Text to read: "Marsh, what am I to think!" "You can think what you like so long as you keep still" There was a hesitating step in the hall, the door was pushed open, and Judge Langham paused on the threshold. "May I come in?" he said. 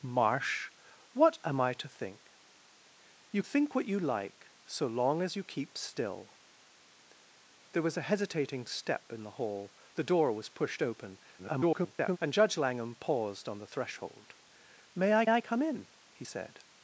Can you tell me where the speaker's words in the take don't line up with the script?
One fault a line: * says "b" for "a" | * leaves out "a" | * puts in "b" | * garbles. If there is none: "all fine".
* leaves out "can"
* garbles
* puts in "I"